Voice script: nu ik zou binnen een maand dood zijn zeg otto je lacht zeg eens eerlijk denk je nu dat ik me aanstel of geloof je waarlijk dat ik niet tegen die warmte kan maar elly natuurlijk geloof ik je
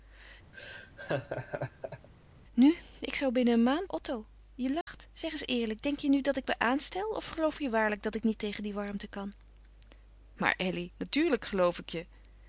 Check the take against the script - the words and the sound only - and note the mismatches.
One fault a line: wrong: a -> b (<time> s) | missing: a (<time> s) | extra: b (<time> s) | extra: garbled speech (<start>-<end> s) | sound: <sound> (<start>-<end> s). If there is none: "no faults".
sound: laugh (0.5-2.1 s)
missing: dood zijn zeg (3.9 s)
sound: dropout (4.8-4.9 s)